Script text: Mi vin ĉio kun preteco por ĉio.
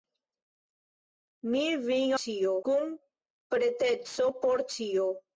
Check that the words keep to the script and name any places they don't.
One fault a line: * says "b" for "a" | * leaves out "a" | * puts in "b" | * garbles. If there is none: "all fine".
all fine